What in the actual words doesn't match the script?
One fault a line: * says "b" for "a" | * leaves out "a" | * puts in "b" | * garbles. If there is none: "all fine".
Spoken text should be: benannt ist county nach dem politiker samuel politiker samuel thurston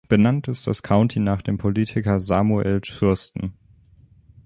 * puts in "das"
* leaves out "politiker samuel"